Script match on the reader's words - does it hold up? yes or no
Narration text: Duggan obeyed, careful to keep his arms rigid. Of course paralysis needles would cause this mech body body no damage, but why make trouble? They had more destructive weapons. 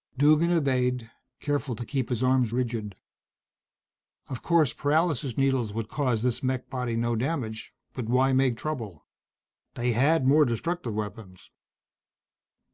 no